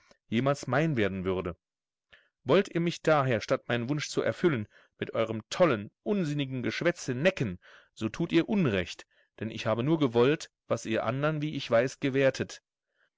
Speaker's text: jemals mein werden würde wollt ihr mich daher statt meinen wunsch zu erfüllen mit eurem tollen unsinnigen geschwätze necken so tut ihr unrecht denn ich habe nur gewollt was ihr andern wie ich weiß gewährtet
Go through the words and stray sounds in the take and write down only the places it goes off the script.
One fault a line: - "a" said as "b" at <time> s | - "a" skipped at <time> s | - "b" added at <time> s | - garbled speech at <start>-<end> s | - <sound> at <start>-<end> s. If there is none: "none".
none